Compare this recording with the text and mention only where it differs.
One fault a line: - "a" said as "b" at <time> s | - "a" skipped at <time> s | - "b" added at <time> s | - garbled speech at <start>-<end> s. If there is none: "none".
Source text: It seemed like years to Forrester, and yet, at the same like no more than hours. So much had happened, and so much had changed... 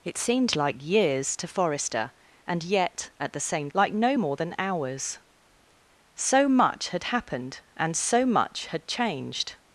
none